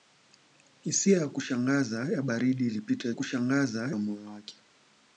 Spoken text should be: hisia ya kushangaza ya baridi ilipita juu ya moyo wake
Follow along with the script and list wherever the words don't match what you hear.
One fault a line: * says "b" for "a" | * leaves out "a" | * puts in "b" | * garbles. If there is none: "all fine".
* says "kushangaza" for "juu"